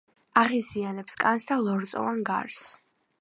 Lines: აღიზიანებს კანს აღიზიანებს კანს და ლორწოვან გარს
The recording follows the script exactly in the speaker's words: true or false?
false